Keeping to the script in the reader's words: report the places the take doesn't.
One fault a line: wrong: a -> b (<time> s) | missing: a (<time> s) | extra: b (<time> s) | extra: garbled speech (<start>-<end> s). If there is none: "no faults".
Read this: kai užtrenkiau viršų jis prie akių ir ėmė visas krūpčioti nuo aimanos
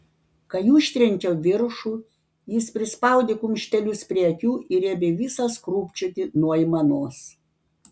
extra: prispaudė kumštelius (2.8 s)